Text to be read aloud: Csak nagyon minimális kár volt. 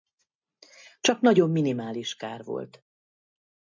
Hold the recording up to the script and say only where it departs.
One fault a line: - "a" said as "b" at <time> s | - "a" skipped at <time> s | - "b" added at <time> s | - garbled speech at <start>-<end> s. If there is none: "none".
none